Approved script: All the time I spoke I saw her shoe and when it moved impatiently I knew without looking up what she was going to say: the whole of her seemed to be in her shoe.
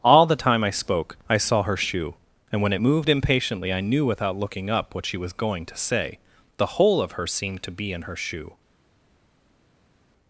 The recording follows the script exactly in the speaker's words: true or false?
true